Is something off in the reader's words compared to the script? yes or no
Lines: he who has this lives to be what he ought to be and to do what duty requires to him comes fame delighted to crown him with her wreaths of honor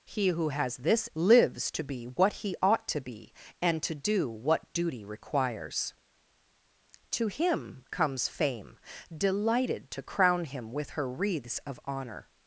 no